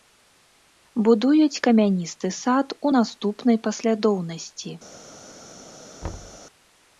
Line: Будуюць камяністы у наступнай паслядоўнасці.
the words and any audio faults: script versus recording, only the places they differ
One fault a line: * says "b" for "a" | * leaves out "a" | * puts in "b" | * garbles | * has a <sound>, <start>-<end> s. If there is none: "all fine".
* puts in "сад"
* has a thud, 6.0-6.4 s